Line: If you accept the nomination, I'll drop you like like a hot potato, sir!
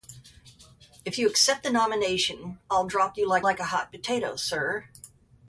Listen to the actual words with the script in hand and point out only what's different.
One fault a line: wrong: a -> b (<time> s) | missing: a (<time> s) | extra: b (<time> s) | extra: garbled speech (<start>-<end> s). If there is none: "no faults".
no faults